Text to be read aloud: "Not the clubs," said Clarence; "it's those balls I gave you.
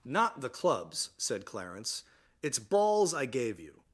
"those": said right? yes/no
no